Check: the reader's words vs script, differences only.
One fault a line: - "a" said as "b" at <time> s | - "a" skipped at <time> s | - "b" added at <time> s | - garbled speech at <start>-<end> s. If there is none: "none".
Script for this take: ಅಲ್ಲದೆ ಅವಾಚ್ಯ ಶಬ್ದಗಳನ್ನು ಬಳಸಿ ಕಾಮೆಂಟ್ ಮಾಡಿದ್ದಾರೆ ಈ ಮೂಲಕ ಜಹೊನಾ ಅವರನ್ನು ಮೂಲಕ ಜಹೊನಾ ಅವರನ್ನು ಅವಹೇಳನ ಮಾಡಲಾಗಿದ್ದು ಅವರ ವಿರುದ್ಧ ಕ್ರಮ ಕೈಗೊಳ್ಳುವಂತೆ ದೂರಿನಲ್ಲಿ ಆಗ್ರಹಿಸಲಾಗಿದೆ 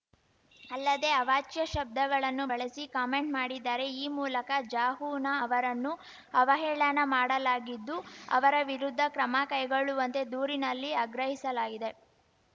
- "ಮೂಲಕ ಜಹೊನಾ ಅವರನ್ನು" skipped at 5.9 s